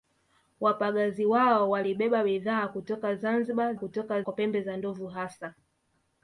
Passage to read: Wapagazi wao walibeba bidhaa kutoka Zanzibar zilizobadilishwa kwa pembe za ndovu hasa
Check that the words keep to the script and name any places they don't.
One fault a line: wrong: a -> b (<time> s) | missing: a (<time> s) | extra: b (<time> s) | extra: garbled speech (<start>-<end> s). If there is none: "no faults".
wrong: zilizobadilishwa -> kutoka (3.7 s)